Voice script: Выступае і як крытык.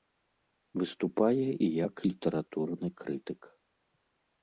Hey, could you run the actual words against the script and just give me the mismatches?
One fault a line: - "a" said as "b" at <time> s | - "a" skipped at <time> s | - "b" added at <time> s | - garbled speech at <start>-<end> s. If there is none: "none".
- "літаратурны" added at 2.1 s